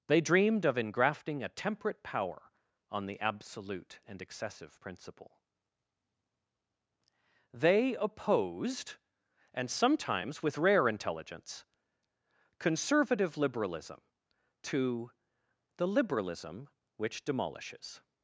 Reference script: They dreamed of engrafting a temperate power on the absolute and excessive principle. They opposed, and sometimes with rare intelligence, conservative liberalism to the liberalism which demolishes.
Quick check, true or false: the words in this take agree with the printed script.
true